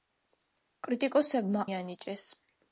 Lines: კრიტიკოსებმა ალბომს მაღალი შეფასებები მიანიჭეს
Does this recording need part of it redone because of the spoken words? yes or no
yes